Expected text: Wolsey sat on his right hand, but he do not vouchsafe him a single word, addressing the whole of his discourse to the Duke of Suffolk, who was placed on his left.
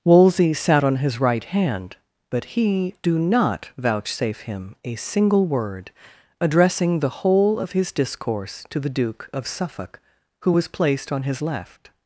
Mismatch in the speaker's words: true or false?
false